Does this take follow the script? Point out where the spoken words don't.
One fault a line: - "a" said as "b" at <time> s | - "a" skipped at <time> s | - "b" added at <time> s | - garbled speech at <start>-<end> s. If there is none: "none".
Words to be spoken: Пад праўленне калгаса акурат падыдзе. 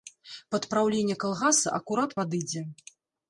none